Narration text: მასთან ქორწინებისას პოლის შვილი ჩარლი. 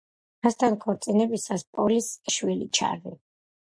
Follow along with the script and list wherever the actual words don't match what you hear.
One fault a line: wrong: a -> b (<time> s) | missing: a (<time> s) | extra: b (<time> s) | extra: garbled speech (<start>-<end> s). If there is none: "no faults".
no faults